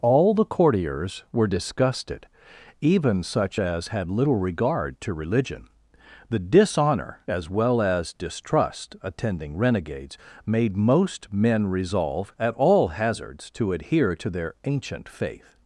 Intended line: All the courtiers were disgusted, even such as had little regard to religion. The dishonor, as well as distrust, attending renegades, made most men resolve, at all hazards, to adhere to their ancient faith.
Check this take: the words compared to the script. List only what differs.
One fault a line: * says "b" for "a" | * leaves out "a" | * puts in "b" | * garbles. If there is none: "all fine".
all fine